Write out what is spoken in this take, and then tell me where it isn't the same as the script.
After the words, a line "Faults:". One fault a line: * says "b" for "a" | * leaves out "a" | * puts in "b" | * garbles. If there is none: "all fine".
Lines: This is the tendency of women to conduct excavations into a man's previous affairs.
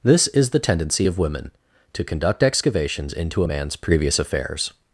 This is the tendency of women to conduct excavations into a man's previous affairs.
Faults:
all fine